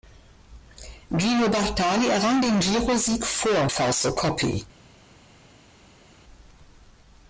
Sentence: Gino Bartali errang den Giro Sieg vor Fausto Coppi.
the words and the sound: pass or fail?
pass